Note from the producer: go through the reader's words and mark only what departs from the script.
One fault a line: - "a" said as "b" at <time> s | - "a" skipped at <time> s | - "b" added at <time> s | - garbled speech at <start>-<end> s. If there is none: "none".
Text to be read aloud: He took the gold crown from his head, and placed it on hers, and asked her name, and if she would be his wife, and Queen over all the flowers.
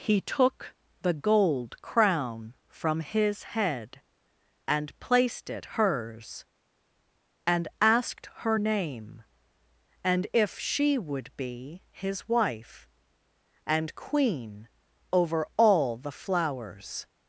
- "on" skipped at 5.8 s